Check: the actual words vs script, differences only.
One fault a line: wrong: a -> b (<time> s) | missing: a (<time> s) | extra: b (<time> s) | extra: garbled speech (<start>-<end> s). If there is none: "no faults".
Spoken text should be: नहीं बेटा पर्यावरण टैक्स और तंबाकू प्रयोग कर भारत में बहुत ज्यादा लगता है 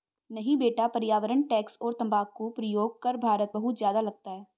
missing: में (3.5 s)